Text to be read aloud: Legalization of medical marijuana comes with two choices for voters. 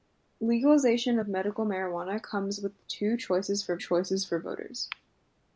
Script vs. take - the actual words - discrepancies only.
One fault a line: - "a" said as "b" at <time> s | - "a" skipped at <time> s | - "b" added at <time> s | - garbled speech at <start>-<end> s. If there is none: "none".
- "choices for" added at 3.8 s